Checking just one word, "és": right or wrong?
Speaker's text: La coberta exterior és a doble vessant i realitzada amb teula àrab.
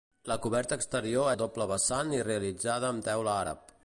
wrong